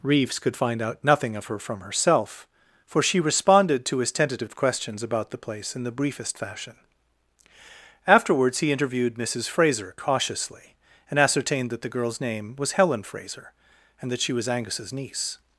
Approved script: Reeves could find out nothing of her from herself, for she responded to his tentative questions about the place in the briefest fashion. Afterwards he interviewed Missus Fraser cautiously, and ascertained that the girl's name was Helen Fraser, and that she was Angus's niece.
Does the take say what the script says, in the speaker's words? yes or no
yes